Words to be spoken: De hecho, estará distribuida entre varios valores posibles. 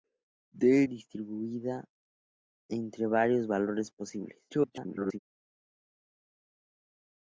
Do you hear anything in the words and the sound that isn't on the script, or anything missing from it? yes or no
yes